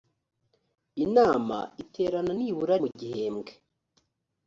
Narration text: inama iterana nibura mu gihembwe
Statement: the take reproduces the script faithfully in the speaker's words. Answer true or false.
true